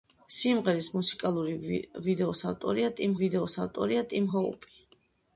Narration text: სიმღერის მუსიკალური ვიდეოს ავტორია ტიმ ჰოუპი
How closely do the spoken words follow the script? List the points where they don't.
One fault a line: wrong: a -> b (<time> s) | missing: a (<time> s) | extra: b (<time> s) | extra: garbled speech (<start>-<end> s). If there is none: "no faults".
extra: ვიდეოს ავტორია ტიმ (3.2 s)